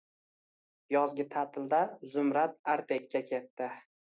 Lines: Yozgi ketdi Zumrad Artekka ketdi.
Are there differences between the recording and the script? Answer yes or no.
yes